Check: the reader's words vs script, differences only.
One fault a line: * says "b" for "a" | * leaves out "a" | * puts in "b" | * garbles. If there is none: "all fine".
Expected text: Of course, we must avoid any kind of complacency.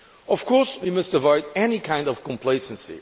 all fine